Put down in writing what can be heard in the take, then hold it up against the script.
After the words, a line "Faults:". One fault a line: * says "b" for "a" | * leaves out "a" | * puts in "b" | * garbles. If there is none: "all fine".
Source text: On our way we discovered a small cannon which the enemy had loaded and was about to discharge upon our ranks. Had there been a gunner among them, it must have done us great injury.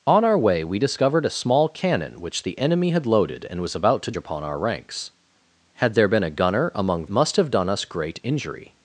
On our way we discovered a small cannon which the enemy had loaded and was about to upon our ranks. Had there been a gunner among must have done us great injury.
Faults:
* leaves out "discharge"
* leaves out "them it"